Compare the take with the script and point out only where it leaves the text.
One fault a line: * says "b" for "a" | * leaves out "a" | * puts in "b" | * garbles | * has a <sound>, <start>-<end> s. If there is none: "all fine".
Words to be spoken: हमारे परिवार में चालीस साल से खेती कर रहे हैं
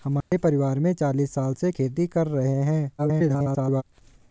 * has a dropout, 0.2-0.3 s
* garbles